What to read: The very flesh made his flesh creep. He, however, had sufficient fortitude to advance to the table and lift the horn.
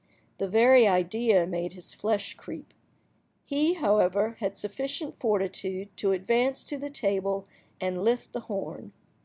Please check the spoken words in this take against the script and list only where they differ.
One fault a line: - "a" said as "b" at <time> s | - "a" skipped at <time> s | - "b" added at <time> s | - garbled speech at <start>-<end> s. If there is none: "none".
- "flesh" said as "idea" at 0.9 s